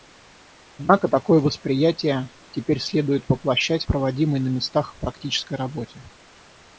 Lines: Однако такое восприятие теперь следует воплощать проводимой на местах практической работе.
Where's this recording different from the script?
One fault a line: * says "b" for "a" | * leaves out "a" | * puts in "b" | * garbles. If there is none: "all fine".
all fine